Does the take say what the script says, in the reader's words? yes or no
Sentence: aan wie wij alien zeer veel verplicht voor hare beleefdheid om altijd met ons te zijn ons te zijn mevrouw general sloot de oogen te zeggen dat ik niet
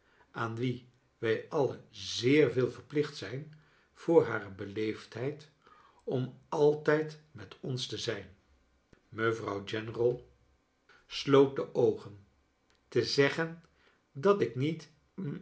no